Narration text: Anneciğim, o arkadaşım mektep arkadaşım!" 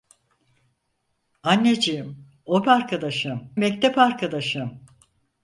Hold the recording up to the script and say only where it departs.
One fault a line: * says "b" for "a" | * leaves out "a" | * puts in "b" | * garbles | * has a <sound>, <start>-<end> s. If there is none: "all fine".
all fine